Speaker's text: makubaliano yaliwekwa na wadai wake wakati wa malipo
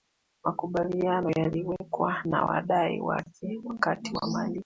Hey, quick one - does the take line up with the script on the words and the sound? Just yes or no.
yes